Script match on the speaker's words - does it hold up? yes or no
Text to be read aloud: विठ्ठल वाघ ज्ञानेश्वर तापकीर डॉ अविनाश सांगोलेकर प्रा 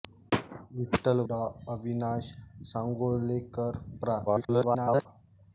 no